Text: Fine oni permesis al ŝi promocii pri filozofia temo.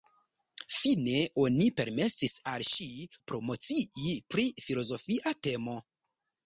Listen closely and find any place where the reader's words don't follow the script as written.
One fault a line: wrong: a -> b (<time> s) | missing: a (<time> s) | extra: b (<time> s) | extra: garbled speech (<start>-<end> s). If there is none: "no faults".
no faults